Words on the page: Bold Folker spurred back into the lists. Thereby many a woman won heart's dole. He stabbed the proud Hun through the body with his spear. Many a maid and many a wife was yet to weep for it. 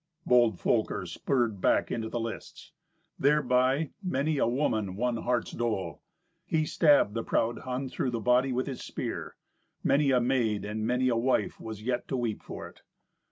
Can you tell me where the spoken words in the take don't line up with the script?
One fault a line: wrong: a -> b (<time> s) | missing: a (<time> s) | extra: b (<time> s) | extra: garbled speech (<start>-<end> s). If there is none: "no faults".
no faults